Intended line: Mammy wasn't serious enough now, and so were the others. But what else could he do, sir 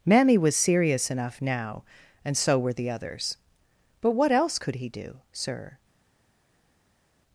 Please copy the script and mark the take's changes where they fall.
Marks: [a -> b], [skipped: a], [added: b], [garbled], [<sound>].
Mammy [wasn't -> was] serious enough now, and so were the others. But what else could he do, sir